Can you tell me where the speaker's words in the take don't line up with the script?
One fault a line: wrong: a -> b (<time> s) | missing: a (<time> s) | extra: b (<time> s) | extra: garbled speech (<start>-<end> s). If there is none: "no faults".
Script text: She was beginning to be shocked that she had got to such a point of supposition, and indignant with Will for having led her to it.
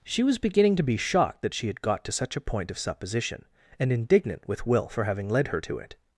no faults